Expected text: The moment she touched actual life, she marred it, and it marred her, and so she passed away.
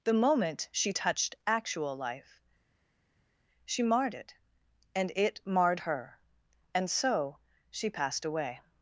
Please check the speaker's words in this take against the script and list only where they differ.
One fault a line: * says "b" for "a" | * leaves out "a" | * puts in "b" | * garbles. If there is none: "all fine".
all fine